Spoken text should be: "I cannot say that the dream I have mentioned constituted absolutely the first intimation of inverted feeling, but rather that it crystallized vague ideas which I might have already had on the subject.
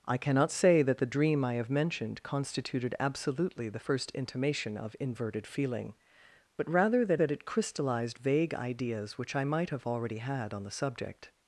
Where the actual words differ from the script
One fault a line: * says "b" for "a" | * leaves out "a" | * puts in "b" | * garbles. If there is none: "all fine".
* puts in "that"